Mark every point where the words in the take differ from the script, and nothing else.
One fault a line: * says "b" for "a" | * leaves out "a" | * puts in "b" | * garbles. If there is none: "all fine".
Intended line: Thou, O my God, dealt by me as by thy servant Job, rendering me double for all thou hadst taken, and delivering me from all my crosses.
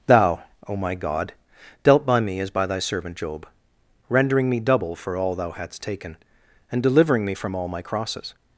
all fine